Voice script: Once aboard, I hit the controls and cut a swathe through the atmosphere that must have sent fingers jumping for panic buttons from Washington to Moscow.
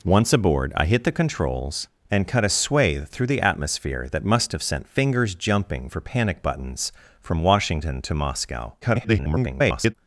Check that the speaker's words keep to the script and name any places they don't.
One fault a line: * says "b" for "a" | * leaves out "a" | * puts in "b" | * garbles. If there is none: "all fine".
* garbles